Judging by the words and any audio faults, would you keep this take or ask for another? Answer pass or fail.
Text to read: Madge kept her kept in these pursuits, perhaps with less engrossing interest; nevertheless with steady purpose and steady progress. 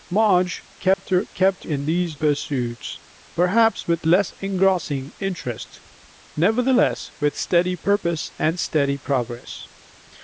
fail